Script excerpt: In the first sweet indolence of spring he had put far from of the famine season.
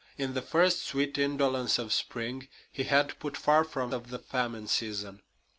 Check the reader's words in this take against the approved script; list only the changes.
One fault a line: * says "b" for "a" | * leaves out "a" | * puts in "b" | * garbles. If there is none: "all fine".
all fine